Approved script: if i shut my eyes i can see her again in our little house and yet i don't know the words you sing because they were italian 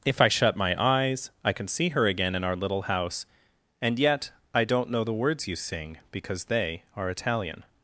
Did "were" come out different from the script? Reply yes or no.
yes